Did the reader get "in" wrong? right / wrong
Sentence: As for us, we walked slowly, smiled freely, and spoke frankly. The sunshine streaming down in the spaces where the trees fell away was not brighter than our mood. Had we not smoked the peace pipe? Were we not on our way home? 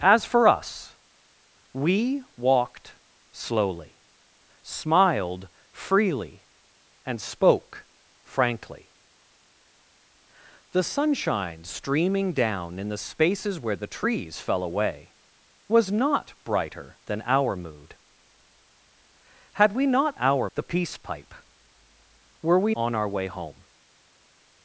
right